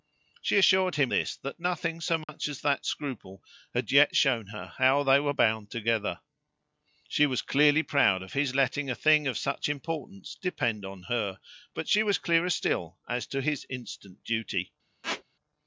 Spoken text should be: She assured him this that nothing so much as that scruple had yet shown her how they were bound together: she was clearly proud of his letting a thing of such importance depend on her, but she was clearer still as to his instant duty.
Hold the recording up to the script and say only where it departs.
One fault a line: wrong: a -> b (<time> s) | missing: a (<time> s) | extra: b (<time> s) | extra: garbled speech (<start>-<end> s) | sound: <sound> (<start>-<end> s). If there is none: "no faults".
sound: dropout (2.2-2.3 s)
sound: squeak (15.0-15.2 s)